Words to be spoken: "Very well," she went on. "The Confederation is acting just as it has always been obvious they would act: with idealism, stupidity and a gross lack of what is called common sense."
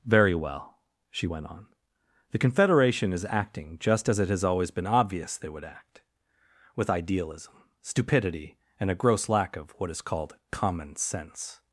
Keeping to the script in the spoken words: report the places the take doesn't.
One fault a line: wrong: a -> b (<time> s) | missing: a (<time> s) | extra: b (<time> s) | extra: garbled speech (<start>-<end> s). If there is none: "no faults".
no faults